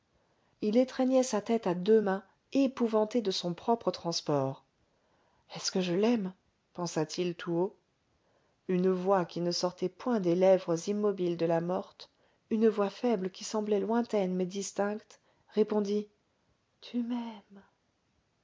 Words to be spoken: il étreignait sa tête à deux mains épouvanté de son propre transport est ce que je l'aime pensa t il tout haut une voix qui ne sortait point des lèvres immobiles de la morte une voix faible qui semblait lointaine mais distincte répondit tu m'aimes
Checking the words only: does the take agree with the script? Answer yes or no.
yes